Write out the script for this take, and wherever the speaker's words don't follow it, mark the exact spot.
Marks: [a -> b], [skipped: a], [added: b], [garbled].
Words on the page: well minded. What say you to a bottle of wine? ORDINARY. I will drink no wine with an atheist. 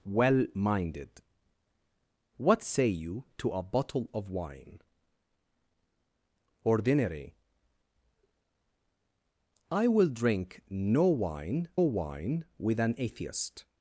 well minded. What say you to a bottle of wine? ORDINARY. I will drink no wine [added: wine] with an atheist.